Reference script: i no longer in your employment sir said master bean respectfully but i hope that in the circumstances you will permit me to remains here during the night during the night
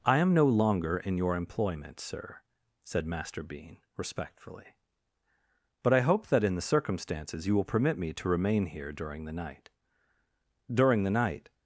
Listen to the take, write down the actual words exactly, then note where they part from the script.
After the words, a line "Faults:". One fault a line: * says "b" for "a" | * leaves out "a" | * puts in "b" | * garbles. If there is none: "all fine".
i am no longer in your employment sir said master bean respectfully but i hope that in the circumstances you will permit me to remain here during the night during the night
Faults:
* puts in "am"
* says "remain" for "remains"